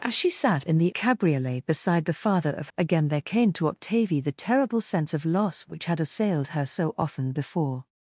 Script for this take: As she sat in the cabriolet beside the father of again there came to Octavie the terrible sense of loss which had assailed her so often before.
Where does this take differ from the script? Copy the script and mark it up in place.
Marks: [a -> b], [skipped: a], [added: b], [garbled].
As she sat in the cabriolet beside the father of again there came to Octavie the terrible sense of loss which had assailed her so often before.